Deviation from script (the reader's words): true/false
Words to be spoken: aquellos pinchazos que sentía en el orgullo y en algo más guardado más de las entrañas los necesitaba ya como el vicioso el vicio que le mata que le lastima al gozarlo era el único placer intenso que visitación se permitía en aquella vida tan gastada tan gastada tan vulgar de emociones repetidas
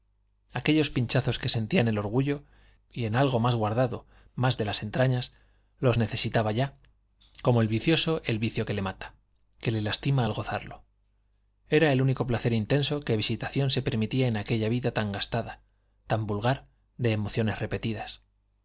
true